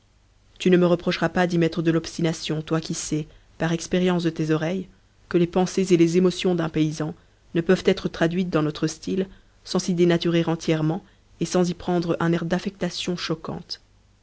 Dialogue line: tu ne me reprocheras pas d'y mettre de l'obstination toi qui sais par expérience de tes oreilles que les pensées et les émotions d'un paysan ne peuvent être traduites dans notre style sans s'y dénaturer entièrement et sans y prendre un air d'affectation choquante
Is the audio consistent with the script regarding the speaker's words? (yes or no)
yes